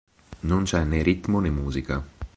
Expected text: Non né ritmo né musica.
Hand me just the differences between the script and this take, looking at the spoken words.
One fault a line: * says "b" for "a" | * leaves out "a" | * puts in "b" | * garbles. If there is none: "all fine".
* puts in "c'è"